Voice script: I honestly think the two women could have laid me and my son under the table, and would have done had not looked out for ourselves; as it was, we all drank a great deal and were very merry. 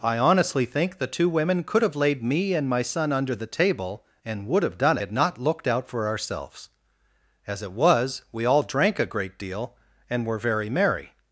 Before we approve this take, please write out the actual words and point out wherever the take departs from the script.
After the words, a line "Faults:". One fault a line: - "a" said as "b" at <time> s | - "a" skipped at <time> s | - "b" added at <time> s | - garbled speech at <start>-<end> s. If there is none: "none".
I honestly think the two women could have laid me and my son under the table, and would have done had not looked out for ourselves; as it was, we all drank a great deal and were very merry.
Faults:
none